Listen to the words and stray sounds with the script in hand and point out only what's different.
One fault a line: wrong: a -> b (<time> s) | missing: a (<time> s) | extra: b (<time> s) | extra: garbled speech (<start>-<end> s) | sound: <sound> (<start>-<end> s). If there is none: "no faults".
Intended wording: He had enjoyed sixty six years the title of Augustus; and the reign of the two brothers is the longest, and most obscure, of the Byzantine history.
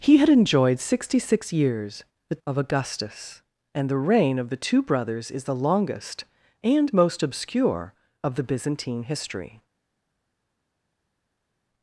missing: title (2.4 s)